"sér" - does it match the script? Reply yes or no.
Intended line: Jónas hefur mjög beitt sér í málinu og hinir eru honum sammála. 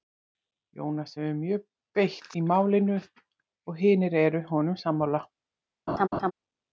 no